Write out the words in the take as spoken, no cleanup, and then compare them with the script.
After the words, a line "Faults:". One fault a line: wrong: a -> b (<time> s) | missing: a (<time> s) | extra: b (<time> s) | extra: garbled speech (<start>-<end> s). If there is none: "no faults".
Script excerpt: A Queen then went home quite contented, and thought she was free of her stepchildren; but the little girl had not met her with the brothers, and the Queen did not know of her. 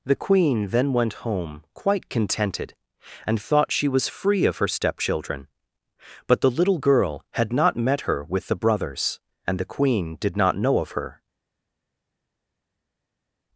The Queen then went home quite contented, and thought she was free of her stepchildren; but the little girl had not met her with the brothers, and the Queen did not know of her.
Faults:
wrong: A -> The (0.0 s)